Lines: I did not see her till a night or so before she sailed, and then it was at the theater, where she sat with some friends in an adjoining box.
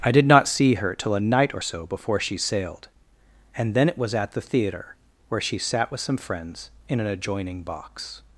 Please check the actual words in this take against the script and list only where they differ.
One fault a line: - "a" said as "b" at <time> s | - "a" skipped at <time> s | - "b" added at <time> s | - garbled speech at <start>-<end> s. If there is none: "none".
none